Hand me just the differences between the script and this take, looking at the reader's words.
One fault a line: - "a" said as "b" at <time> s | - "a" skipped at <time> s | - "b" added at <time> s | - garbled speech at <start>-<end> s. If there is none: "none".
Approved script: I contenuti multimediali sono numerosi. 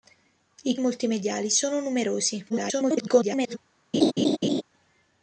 - "contenuti" skipped at 0.8 s
- garbled speech at 2.5-3.6 s